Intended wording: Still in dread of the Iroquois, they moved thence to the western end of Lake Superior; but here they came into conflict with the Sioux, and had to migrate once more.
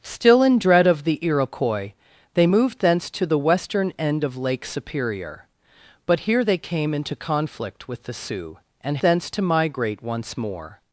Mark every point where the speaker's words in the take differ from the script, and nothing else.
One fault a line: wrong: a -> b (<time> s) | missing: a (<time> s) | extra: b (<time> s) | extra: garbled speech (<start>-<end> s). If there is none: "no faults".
wrong: had -> thence (9.0 s)